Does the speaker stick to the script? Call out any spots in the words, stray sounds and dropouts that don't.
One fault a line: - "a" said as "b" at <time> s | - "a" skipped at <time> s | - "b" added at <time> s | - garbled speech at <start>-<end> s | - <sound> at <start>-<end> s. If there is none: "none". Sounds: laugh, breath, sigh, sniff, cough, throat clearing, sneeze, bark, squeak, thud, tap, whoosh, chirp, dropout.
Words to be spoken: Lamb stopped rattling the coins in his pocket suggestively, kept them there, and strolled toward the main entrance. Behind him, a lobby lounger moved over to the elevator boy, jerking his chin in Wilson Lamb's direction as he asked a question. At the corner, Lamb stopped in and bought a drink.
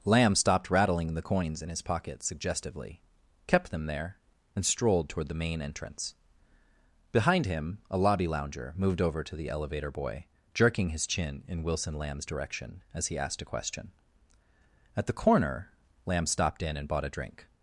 none